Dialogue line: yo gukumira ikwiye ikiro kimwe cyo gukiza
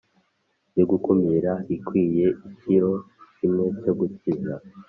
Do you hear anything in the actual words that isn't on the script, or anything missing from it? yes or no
no